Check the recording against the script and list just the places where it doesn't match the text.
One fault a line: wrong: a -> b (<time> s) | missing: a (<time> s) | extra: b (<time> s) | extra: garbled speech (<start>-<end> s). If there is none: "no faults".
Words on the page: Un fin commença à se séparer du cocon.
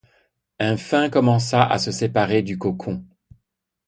no faults